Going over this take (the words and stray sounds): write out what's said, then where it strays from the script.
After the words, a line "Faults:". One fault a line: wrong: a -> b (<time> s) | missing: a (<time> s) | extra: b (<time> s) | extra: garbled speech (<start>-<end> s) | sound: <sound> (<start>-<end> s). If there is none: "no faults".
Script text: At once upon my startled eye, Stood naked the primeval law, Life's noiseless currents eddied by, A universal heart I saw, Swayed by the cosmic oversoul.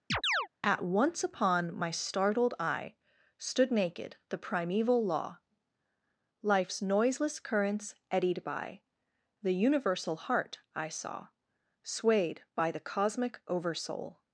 At once upon my startled eye, Stood naked the primeval law, Life's noiseless currents eddied by, The universal heart I saw, Swayed by the cosmic oversoul.
Faults:
sound: chirp (0.1-0.5 s)
wrong: A -> The (9.4 s)